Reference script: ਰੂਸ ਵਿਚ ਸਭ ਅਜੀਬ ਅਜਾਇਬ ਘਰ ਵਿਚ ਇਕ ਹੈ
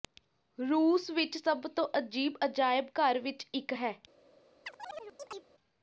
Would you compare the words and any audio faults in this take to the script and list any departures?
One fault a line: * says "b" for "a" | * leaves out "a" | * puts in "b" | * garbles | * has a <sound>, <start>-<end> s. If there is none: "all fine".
* puts in "ਤੋਂ"
* has a chirp, 4.7-5.5 s